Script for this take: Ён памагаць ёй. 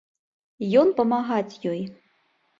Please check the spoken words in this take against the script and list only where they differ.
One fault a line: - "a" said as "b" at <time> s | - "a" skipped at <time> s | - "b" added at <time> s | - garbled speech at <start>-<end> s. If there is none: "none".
none